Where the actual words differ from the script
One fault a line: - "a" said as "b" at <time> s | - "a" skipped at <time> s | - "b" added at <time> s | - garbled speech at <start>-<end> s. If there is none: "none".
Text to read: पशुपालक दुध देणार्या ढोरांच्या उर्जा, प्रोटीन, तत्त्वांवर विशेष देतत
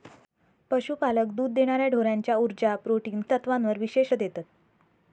none